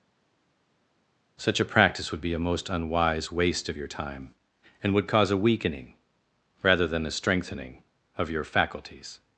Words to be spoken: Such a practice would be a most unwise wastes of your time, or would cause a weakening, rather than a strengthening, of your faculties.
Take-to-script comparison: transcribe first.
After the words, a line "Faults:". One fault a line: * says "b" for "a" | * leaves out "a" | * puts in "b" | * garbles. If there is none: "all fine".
Such a practice would be a most unwise waste of your time, and would cause a weakening, rather than a strengthening, of your faculties.
Faults:
* says "waste" for "wastes"
* says "and" for "or"